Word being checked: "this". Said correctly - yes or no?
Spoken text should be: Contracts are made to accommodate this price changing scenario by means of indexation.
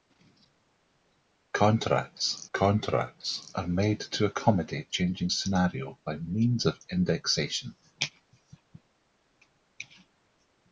no